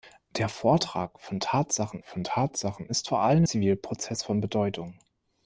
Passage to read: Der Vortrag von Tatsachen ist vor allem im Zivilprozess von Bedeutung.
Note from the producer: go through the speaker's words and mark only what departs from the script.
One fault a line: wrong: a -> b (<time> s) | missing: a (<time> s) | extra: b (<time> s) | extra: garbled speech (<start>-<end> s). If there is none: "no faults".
extra: von Tatsachen (2.0 s)
missing: im (3.4 s)